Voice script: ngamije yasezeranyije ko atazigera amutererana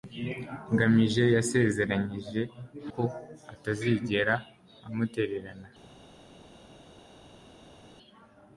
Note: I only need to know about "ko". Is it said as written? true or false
true